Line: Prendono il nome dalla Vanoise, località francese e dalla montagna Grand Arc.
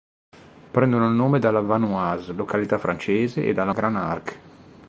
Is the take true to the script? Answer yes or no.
no